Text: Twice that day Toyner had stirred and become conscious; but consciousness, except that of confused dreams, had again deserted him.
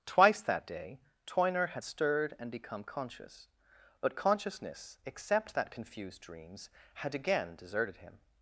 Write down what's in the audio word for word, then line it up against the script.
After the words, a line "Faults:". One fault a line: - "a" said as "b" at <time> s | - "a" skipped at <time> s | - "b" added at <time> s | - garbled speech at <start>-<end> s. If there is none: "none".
Twice that day Toyner had stirred and become conscious; but consciousness, except that confused dreams, had again deserted him.
Faults:
- "of" skipped at 5.7 s